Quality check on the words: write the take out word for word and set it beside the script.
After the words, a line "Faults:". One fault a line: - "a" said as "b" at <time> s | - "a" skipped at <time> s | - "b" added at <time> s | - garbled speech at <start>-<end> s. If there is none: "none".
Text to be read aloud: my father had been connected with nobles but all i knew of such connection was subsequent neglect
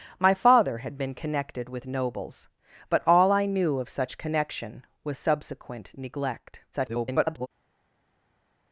my father had been connected with nobles but all i knew of such connection was subsequent neglect [garbled]
Faults:
- garbled speech at 6.7-7.5 s